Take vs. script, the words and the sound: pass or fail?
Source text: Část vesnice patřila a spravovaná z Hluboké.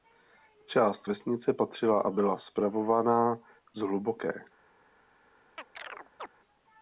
fail